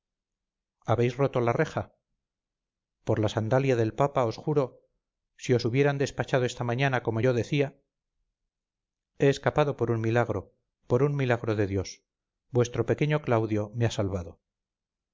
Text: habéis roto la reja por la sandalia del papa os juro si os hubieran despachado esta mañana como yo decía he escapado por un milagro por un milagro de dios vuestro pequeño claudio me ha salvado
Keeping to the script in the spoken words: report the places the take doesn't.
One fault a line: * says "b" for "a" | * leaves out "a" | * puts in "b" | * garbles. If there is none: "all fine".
all fine